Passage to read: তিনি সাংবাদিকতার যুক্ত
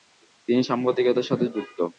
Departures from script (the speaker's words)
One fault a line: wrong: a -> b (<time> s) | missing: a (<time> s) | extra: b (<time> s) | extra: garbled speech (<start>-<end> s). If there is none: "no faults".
extra: সাথে (1.3 s)